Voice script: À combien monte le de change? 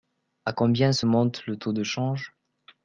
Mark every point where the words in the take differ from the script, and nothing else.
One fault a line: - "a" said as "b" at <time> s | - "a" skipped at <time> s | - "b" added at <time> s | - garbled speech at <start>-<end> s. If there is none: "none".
- "se" added at 0.9 s
- "taux" added at 1.6 s